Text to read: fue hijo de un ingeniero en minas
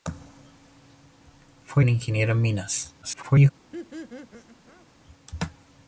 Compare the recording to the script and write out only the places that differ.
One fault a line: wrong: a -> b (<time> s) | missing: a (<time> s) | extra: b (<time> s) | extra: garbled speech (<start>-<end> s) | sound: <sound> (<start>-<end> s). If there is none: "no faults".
missing: hijo de (1.9 s)
extra: garbled speech (3.0-3.5 s)
sound: laugh (3.7-4.9 s)